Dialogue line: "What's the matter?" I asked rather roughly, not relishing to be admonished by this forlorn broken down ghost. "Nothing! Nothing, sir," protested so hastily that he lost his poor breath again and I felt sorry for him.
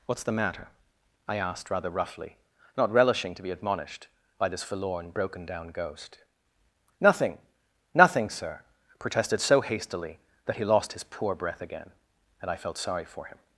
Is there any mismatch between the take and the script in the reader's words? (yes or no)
no